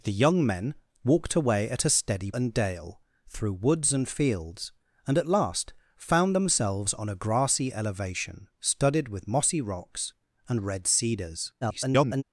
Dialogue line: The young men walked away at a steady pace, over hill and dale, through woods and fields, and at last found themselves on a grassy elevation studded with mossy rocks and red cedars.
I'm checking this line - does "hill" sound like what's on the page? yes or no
no